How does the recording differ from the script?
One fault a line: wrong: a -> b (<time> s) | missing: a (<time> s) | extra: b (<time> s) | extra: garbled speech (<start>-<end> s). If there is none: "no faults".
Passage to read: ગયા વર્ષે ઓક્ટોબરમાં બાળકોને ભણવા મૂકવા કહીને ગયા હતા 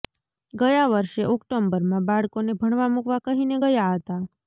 no faults